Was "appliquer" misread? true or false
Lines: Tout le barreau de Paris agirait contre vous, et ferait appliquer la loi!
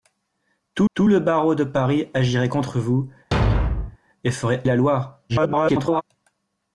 true